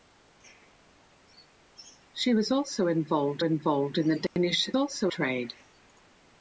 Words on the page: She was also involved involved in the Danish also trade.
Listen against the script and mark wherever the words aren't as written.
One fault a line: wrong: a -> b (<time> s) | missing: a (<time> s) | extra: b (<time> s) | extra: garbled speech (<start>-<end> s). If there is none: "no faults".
no faults